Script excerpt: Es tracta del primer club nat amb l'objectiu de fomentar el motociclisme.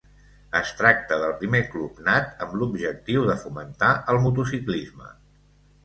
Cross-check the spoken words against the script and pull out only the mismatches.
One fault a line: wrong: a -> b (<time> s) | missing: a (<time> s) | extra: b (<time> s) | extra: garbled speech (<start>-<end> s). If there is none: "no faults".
no faults